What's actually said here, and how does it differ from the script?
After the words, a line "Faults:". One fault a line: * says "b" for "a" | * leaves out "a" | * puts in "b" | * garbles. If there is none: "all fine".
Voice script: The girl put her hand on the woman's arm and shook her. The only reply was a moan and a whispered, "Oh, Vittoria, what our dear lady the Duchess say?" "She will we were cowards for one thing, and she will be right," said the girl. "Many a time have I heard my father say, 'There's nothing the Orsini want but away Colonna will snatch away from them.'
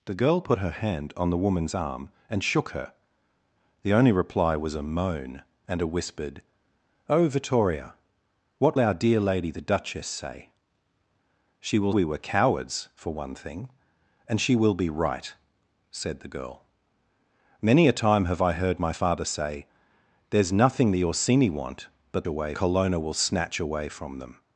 The girl put her hand on the woman's arm and shook her. The only reply was a moan and a whispered, "Oh, Vittoria, what our dear lady the Duchess say?" "She will we were cowards for one thing, and she will be right," said the girl. "Many a time have I heard my father say, 'There's nothing the Orsini want but away Colonna will snatch away from them.'
Faults:
all fine